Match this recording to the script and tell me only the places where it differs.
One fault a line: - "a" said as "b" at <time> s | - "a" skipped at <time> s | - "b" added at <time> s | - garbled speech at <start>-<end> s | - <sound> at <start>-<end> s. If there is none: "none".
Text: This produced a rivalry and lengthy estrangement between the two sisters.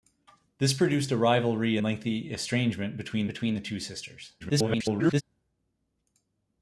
- "and" skipped at 1.8 s
- "between" added at 3.3 s
- garbled speech at 4.4-5.2 s